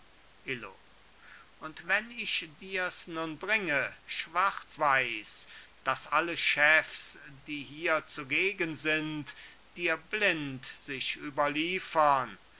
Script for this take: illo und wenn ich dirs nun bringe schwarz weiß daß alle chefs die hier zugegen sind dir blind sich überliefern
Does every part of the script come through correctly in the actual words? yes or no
yes